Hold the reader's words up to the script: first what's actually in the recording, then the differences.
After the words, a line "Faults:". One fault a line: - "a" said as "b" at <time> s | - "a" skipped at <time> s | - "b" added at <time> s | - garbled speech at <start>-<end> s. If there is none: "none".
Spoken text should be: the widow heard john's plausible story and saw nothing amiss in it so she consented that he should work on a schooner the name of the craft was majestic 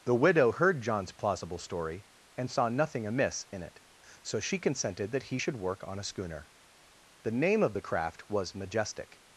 the widow heard john's plausible story and saw nothing amiss in it so she consented that he should work on a schooner the name of the craft was majestic
Faults:
none